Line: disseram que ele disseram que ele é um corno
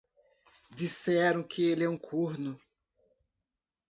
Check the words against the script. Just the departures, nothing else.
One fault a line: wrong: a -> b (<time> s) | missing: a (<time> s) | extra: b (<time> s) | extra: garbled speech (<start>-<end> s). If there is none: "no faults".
missing: disseram que ele (1.8 s)